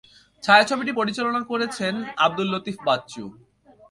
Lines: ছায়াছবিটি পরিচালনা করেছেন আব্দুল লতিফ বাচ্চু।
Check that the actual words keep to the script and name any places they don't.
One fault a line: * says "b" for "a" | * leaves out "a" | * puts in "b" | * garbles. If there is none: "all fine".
all fine